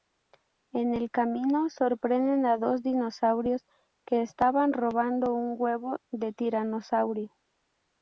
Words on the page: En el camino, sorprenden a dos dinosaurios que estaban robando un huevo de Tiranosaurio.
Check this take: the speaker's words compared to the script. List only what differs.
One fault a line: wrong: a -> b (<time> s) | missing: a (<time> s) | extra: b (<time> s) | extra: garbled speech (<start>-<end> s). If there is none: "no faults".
no faults